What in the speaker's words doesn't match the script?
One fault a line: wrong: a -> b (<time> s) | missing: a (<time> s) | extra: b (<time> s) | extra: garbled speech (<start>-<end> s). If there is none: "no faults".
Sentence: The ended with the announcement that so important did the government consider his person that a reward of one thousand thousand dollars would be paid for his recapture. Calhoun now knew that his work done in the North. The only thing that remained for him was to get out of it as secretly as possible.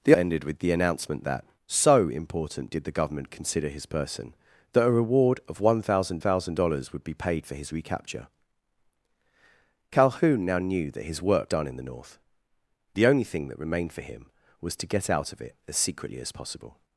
no faults